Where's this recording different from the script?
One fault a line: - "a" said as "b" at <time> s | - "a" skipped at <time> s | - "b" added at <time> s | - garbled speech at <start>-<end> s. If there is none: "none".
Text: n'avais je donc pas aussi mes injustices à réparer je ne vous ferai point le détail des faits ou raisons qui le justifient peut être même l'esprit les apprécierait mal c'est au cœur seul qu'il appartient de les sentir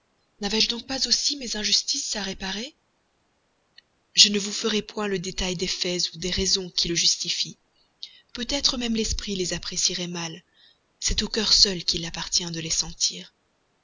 - "des" added at 6.2 s